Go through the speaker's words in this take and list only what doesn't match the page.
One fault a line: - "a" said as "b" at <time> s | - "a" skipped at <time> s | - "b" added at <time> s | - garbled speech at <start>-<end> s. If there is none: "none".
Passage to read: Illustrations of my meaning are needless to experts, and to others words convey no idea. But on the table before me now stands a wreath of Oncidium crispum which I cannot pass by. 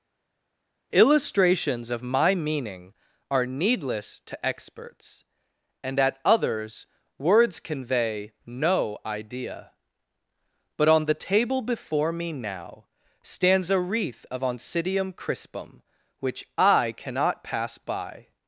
- "to" said as "at" at 6.0 s